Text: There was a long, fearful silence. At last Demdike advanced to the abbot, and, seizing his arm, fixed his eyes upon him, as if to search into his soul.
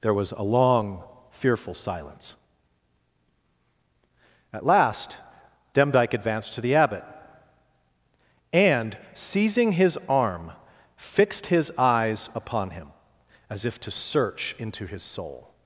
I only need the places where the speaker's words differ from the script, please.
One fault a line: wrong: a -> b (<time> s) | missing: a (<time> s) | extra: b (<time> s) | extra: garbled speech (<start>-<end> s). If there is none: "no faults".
no faults